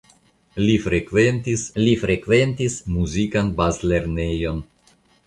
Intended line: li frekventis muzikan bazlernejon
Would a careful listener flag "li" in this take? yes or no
no